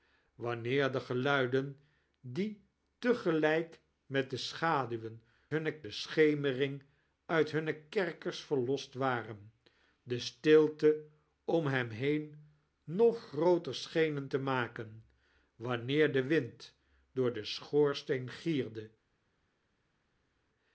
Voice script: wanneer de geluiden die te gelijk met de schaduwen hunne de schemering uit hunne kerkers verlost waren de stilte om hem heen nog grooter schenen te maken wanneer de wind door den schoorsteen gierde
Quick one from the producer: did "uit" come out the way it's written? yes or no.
yes